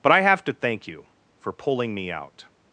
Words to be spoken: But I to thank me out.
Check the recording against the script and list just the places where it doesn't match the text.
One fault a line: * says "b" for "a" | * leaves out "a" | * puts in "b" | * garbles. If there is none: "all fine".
* puts in "have"
* puts in "you for pulling"